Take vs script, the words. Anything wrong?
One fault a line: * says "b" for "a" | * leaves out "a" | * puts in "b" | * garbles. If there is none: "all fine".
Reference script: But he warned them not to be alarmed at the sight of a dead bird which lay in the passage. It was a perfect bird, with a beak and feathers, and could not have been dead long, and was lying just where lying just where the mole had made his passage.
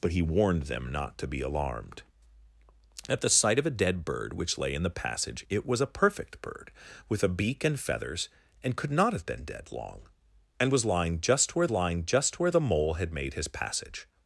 all fine